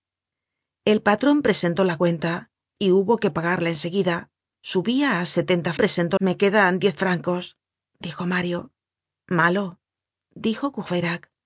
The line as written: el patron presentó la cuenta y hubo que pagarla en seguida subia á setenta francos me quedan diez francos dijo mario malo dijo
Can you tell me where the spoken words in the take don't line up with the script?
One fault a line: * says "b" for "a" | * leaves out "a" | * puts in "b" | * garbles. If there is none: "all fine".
* says "presentó" for "francos"